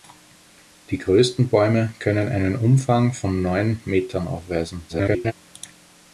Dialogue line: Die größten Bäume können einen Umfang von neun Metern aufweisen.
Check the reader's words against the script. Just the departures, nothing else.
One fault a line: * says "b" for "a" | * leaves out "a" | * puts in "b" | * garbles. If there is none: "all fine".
* garbles